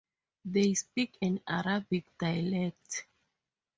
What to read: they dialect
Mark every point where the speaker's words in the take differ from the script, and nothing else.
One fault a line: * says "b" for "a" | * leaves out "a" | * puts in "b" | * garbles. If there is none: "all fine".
* puts in "speak an arabic"